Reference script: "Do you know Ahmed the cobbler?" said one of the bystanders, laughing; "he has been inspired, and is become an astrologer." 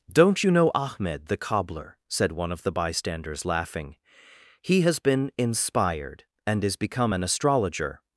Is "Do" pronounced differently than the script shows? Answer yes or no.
yes